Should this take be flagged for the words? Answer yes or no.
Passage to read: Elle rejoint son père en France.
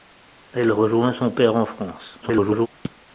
yes